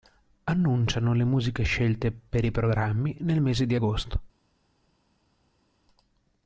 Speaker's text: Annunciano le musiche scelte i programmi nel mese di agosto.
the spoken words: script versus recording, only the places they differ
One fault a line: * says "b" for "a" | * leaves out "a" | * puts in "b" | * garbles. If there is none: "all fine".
* puts in "per"